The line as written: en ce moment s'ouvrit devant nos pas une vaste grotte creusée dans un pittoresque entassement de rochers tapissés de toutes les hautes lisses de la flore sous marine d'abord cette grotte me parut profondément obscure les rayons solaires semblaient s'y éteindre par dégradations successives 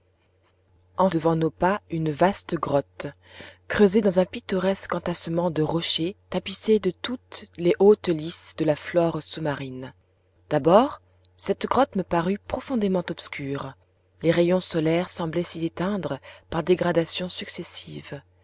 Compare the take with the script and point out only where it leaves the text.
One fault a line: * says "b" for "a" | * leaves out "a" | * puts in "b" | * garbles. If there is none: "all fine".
* leaves out "ce moment s'ouvrit"